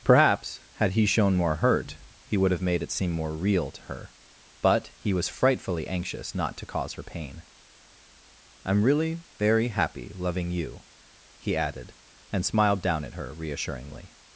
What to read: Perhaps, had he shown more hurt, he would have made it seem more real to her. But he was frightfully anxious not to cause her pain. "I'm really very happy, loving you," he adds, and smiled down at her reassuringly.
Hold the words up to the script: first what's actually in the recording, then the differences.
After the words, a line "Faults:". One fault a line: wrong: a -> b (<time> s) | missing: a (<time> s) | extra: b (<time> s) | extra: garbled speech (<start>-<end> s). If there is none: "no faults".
Perhaps, had he shown more hurt, he would have made it seem more real to her. But he was frightfully anxious not to cause her pain. "I'm really very happy, loving you," he added, and smiled down at her reassuringly.
Faults:
wrong: adds -> added (11.6 s)